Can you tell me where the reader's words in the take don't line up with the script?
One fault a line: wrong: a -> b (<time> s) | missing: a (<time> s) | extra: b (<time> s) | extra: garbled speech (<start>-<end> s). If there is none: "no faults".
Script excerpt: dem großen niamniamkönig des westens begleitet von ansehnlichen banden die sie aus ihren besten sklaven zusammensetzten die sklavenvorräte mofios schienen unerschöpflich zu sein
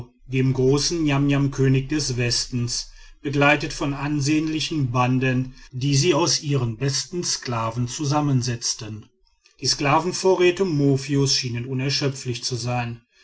no faults